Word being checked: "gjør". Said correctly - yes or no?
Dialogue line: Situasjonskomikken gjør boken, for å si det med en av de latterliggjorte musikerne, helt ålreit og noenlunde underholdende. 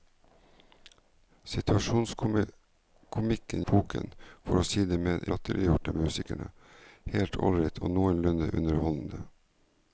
no